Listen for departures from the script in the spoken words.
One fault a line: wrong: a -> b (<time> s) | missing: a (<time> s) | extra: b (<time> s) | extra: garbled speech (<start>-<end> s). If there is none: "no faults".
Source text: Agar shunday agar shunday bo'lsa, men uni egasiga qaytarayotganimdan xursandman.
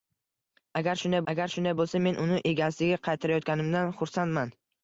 no faults